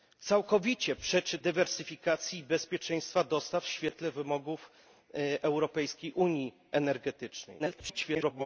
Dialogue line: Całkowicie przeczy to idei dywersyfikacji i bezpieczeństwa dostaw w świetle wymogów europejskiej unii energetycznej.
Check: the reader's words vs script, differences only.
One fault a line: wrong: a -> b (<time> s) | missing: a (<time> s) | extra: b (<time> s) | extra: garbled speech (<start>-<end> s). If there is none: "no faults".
missing: to idei (1.4 s)
extra: garbled speech (7.6-8.5 s)